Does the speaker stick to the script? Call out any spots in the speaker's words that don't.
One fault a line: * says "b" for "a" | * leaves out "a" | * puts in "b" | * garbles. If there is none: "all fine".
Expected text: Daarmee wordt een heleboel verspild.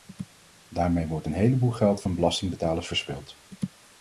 * puts in "geld van belastingbetalers"